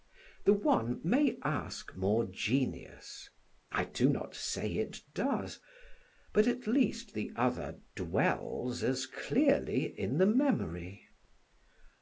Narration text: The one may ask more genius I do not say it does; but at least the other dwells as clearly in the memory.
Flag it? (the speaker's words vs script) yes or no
no